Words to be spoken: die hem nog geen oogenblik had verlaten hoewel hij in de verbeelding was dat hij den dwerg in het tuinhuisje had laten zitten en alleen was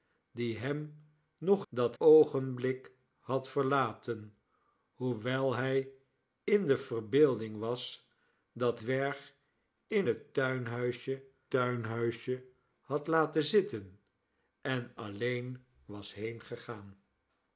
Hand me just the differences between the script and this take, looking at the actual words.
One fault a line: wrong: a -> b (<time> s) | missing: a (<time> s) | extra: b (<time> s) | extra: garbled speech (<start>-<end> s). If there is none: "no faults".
wrong: geen -> dat (1.7 s)
missing: hij den (8.8 s)
extra: tuinhuisje (11.5 s)